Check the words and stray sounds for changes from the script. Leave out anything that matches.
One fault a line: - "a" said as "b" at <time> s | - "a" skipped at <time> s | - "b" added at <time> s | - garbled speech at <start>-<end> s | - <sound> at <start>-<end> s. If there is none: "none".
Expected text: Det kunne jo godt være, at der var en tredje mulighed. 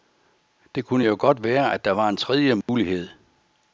- dropout at 2.6-2.7 s